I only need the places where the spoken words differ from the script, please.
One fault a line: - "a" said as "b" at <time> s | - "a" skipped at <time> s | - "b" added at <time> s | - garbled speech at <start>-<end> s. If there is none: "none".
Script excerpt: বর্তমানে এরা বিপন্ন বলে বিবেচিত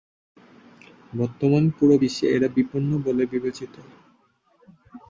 - "পুরো বিশ্বে" added at 1.8 s